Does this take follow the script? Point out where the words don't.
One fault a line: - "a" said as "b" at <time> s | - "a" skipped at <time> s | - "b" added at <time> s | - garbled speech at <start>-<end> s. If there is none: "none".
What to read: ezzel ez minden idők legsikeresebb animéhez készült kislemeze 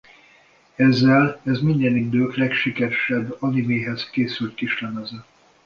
none